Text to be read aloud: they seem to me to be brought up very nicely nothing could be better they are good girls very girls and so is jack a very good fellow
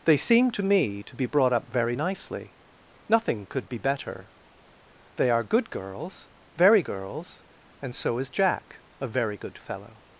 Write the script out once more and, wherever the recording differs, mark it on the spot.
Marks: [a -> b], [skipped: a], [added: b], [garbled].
they seem to me to be brought up very nicely nothing could be better they are good girls very girls and so is jack a very good fellow